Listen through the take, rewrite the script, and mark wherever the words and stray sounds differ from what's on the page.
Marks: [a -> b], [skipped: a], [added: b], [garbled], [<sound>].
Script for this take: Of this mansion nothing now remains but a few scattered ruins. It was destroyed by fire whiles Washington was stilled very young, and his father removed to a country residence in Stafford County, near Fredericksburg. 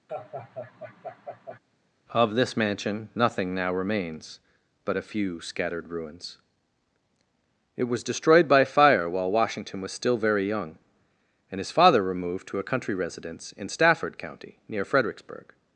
[laugh] Of this mansion nothing now remains but a few scattered ruins. It was destroyed by fire [whiles -> while] Washington was [stilled -> still] very young, and his father removed to a country residence in Stafford County, near Fredericksburg.